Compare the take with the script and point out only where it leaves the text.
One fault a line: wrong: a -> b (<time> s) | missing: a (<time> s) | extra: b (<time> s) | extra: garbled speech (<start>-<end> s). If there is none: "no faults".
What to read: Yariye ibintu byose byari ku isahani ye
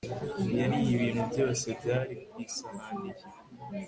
no faults